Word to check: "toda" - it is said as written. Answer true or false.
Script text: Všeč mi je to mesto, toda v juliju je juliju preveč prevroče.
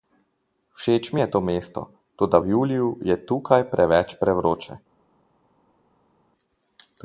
true